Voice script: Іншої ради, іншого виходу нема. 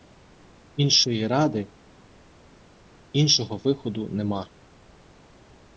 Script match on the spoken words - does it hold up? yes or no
yes